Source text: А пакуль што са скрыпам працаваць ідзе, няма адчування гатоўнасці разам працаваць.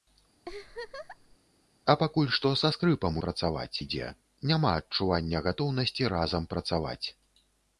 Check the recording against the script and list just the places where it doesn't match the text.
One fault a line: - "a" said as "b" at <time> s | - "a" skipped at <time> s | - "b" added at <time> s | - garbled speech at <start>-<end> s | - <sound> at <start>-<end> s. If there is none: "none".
- laugh at 0.4-1.4 s